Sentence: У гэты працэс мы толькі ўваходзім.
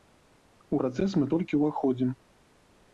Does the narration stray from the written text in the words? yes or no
yes